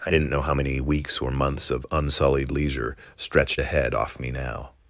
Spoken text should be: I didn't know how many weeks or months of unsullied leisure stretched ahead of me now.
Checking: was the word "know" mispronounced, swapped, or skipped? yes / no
no